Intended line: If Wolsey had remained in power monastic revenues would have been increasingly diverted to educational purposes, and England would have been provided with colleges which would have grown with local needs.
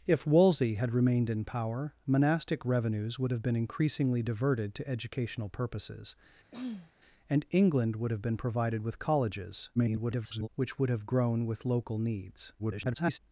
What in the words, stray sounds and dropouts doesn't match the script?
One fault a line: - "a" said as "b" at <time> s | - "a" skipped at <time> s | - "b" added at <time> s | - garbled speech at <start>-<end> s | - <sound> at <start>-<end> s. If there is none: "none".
- throat clearing at 6.5-6.9 s
- garbled speech at 9.8-10.5 s
- garbled speech at 12.6-13.2 s